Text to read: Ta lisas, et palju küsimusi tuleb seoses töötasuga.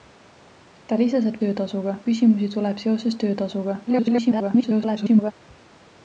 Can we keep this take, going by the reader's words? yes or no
no